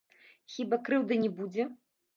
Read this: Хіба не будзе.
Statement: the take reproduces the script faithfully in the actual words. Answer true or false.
false